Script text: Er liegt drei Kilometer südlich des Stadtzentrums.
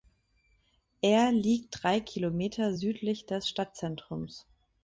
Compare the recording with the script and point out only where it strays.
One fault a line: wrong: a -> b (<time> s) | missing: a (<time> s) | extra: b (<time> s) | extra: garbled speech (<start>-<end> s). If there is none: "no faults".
no faults